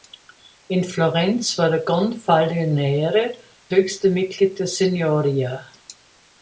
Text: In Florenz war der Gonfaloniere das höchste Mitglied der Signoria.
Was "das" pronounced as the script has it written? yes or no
no